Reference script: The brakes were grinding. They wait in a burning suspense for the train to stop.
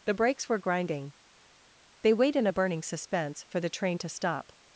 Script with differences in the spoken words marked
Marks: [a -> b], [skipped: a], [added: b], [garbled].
The brakes were grinding. They wait in a burning suspense for the train to stop.